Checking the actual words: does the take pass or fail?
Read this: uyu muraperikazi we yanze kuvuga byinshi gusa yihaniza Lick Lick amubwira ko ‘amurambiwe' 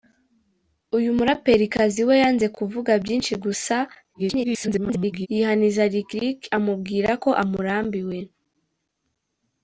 fail